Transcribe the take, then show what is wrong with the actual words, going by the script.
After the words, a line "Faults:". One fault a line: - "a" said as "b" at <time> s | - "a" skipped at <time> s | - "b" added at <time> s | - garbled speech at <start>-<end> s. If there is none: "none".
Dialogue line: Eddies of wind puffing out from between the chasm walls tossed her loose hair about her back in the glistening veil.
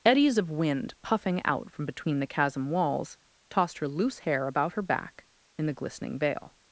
Eddies of wind puffing out from between the chasm walls tossed her loose hair about her back in the glistening veil.
Faults:
none